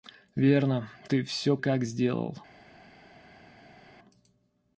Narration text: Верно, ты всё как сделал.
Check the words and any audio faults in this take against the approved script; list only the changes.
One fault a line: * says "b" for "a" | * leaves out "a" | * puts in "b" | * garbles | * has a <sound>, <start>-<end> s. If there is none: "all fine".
all fine